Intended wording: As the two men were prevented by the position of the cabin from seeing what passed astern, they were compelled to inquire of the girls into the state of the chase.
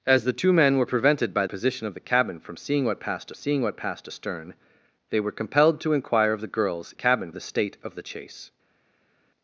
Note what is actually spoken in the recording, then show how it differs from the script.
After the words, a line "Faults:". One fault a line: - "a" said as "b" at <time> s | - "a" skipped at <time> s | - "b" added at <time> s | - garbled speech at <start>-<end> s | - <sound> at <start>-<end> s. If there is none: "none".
As the two men were prevented by position of the cabin from seeing what passed seeing what passed astern, they were compelled to inquire of the girls cabin the state of the chase.
Faults:
- "the" skipped at 1.4 s
- "seeing what passed" added at 3.3 s
- "into" said as "cabin" at 6.9 s